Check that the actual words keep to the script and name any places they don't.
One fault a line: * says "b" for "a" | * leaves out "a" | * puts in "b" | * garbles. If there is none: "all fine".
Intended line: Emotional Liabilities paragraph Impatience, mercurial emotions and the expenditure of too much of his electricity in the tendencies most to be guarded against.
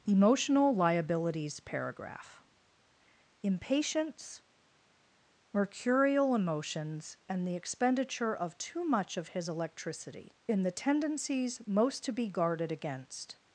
all fine